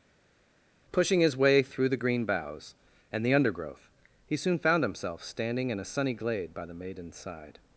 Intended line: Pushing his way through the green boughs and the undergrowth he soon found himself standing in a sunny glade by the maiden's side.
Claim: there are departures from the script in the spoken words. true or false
false